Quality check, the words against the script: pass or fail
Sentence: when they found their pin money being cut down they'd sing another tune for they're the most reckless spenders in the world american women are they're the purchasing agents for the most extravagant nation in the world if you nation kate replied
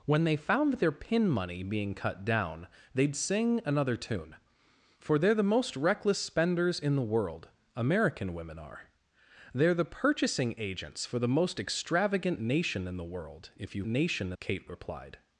pass